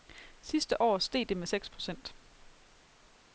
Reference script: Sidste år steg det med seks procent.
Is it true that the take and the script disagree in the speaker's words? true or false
false